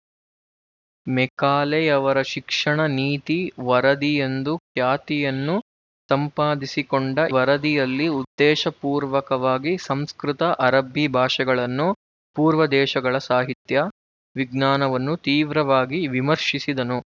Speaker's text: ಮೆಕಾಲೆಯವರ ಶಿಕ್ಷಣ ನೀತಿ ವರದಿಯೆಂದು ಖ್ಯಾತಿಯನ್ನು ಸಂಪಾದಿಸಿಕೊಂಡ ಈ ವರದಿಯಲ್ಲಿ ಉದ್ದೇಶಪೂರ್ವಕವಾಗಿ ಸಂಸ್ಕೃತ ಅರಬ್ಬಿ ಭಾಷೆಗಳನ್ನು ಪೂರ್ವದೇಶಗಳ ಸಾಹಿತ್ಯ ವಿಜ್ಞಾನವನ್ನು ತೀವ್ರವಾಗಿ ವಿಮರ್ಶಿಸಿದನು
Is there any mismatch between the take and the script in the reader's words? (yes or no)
yes